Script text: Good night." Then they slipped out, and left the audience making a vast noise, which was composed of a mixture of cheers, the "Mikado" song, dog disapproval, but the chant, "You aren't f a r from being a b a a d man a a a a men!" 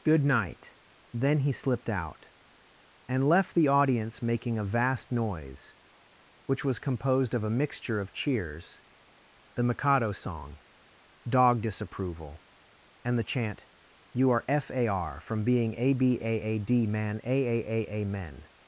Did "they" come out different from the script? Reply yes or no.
yes